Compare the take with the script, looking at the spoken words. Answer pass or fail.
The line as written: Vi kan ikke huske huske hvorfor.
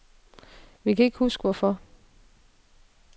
fail